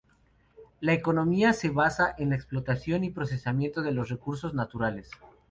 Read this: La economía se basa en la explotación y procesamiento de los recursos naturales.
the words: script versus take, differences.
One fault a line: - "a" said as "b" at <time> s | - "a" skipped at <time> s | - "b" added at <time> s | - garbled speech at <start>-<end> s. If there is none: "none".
none